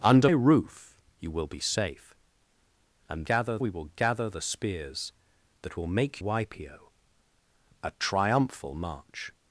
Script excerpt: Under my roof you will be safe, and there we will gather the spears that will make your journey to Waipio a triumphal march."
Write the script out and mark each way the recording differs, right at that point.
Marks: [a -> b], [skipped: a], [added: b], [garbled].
Under [skipped: my] roof you will be safe, and [there -> gather] we will gather the spears that will make [skipped: your journey to] Waipio a triumphal march."